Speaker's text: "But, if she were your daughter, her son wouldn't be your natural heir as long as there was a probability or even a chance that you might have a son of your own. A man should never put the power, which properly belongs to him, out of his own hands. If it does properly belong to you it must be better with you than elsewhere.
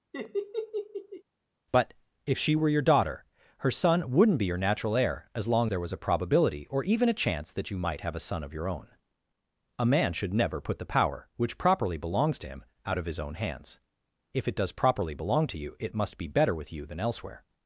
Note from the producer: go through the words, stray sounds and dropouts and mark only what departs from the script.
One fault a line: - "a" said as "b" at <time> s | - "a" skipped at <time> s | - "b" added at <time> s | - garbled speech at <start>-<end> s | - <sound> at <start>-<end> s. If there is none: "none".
- laugh at 0.1-1.2 s
- "as" skipped at 5.7 s